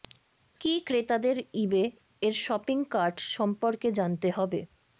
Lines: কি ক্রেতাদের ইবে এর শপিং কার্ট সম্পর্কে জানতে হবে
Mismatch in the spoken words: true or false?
false